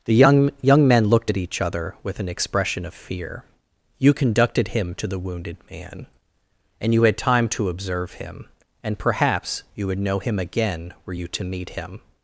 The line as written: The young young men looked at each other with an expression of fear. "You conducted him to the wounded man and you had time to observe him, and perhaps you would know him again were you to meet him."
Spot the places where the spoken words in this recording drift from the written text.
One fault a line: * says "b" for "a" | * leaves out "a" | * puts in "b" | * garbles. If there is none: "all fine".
all fine